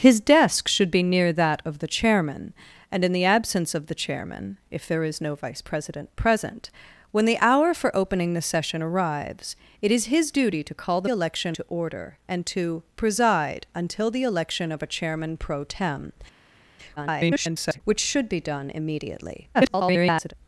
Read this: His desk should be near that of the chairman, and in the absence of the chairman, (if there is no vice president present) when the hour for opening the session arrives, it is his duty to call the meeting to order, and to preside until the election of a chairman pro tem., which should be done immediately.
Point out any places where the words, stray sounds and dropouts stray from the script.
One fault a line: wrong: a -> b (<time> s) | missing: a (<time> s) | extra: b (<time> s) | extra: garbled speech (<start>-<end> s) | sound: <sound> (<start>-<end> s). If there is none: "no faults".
wrong: meeting -> election (11.1 s)
extra: garbled speech (17.0-17.8 s)
extra: garbled speech (19.5-20.3 s)